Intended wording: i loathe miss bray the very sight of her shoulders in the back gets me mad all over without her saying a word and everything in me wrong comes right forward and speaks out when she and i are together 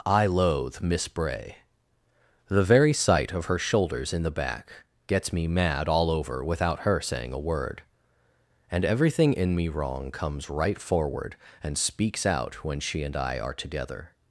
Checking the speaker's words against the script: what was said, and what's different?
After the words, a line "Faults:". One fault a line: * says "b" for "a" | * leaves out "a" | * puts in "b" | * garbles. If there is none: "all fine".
i loathe miss bray the very sight of her shoulders in the back gets me mad all over without her saying a word and everything in me wrong comes right forward and speaks out when she and i are together
Faults:
all fine